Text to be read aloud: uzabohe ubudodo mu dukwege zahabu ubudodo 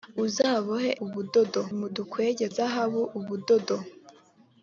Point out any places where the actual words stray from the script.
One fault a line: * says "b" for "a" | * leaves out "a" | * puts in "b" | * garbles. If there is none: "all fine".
all fine